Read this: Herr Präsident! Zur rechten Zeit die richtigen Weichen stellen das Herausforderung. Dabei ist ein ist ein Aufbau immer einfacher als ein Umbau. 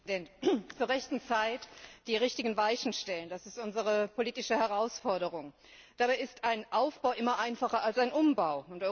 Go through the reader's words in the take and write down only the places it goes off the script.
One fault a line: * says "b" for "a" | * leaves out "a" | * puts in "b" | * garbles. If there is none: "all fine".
* puts in "ist unsere politische"
* leaves out "ist ein"